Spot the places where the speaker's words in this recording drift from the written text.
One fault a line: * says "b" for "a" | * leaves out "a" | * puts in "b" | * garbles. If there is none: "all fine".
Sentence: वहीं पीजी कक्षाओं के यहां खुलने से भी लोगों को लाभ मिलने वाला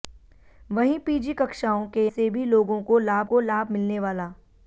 * leaves out "यहां खुलने"
* puts in "को लाभ"